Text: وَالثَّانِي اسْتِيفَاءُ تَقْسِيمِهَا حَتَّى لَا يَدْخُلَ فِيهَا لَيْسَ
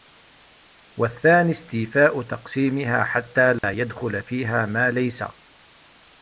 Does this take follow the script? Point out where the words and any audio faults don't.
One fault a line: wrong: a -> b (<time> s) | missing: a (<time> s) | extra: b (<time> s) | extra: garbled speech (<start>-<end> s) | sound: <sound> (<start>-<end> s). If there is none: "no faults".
sound: dropout (3.6-3.6 s)
extra: مَا (4.7 s)